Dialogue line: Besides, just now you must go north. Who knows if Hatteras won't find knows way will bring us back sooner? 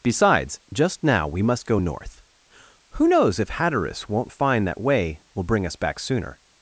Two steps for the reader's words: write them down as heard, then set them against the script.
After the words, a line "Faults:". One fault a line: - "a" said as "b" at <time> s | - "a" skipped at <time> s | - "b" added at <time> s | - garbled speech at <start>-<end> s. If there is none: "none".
Besides, just now we must go north. Who knows if Hatteras won't find that way will bring us back sooner?
Faults:
- "you" said as "we" at 1.3 s
- "knows" said as "that" at 4.7 s